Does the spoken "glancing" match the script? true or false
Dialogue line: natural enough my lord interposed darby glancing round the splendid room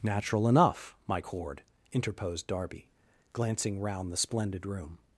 true